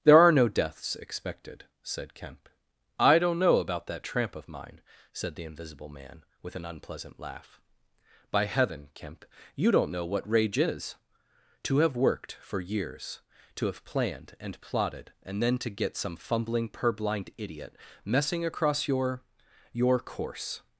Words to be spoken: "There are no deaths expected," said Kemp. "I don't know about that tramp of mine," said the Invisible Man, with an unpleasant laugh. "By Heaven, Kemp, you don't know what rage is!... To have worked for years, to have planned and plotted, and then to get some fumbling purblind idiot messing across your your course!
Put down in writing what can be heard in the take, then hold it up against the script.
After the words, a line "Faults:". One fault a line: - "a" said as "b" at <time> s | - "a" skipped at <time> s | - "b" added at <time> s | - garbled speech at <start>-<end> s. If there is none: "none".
"There are no deaths expected," said Kemp. "I don't know about that tramp of mine," said the Invisible Man, with an unpleasant laugh. "By Heaven, Kemp, you don't know what rage is!... To have worked for years, to have planned and plotted, and then to get some fumbling purblind idiot messing across your your course!
Faults:
none